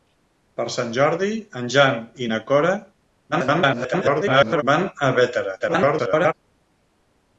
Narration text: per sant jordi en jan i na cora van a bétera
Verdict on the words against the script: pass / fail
fail